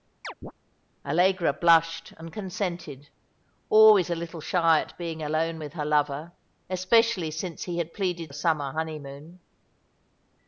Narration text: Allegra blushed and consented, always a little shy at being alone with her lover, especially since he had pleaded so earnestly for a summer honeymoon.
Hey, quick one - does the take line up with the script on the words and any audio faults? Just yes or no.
no